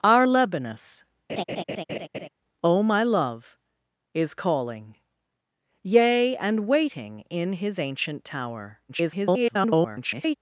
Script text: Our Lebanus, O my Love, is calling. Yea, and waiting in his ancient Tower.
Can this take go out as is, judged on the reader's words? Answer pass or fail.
fail